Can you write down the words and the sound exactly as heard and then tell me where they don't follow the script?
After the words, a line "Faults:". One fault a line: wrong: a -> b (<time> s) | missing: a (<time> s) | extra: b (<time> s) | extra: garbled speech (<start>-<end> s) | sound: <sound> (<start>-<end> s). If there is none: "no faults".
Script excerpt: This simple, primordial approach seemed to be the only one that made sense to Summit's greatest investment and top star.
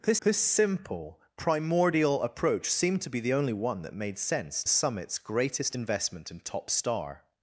This this simple, primordial approach seemed to be the only one that made sense Summit's greatest investment and top star.
Faults:
extra: this (0.2 s)
missing: to (4.7 s)